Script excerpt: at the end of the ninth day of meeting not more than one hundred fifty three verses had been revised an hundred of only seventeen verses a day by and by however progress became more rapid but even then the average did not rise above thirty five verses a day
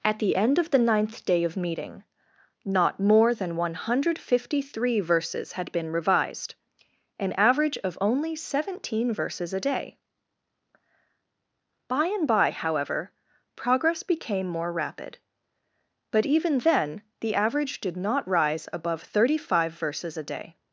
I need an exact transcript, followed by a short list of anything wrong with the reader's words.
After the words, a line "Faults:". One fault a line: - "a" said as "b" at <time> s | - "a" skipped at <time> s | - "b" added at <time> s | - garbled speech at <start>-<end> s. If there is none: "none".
at the end of the ninth day of meeting not more than one hundred fifty three verses had been revised an average of only seventeen verses a day by and by however progress became more rapid but even then the average did not rise above thirty five verses a day
Faults:
- "hundred" said as "average" at 7.3 s